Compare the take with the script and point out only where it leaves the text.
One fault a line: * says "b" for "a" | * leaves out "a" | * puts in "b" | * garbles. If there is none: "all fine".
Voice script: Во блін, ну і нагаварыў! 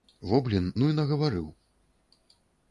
all fine